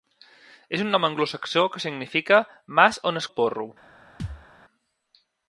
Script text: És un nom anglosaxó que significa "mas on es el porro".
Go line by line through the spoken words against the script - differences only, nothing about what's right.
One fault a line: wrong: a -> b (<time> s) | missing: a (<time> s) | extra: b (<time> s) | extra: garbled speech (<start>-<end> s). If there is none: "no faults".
no faults